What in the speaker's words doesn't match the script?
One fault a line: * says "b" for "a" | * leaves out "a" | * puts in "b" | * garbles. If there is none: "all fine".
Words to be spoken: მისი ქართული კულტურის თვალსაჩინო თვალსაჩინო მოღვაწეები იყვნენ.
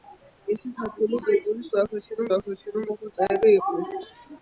all fine